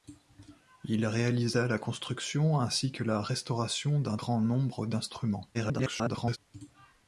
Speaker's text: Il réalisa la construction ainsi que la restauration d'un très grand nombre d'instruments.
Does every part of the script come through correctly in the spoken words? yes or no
no